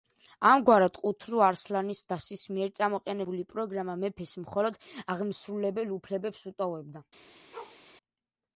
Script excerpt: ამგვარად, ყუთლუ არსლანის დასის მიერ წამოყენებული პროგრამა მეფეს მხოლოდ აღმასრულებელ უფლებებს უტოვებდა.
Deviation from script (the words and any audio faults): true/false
true